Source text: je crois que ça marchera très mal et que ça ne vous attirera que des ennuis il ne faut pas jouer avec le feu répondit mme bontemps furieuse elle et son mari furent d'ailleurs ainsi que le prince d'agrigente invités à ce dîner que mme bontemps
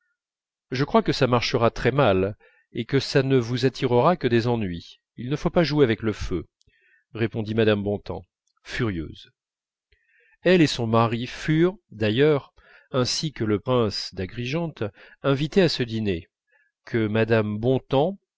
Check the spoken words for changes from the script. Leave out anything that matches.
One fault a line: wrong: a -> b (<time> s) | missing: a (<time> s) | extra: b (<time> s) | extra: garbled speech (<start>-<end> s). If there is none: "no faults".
no faults